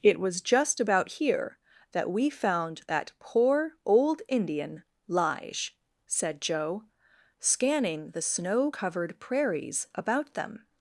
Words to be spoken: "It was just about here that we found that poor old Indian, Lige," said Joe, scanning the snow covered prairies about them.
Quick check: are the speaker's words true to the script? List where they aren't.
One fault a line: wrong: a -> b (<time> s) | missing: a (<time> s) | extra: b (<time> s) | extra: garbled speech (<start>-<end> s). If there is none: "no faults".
no faults